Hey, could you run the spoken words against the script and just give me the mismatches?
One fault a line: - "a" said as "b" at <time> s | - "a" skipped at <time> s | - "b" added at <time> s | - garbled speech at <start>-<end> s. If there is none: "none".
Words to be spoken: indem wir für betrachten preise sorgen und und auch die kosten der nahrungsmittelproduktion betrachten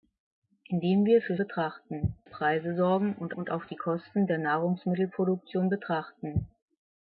none